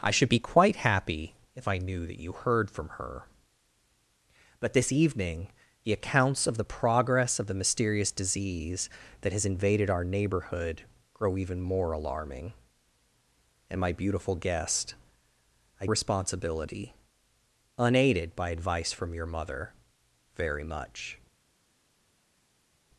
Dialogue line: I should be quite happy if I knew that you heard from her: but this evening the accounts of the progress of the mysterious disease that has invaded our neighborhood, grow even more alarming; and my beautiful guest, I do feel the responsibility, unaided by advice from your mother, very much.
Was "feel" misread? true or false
true